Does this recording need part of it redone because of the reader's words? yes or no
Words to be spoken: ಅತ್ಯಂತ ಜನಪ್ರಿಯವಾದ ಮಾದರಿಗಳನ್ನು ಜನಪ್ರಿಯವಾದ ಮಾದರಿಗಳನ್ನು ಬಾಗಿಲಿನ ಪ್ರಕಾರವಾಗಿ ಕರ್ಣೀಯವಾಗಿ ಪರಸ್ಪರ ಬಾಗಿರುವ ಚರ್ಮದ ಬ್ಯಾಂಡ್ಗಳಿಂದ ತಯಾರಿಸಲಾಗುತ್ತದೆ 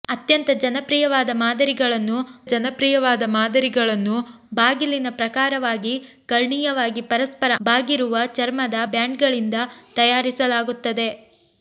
no